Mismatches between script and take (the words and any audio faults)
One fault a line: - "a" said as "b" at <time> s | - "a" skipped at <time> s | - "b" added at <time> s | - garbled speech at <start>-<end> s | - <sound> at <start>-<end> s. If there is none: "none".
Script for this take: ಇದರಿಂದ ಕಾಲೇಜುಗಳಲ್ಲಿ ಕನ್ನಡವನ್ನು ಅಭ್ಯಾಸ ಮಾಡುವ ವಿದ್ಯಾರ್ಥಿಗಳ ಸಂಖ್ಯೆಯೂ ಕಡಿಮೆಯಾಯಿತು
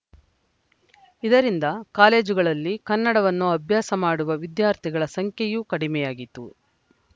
none